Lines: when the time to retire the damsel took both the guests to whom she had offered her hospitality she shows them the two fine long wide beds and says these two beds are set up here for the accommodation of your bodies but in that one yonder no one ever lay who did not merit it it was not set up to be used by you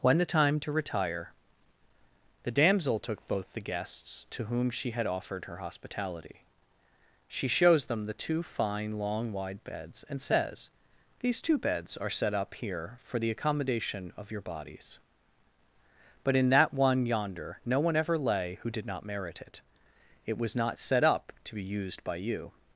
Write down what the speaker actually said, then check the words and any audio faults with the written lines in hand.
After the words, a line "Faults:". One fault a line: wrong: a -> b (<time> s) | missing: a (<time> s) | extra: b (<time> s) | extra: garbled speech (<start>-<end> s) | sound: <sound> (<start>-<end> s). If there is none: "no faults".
when the time to retire the damsel took both the guests to whom she had offered her hospitality she shows them the two fine long wide beds and says these two beds are set up here for the accommodation of your bodies but in that one yonder no one ever lay who did not merit it it was not set up to be used by you
Faults:
no faults